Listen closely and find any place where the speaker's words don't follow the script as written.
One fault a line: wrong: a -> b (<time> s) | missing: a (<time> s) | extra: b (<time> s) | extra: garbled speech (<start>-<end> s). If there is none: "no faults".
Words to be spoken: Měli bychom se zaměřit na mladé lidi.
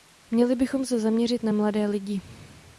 no faults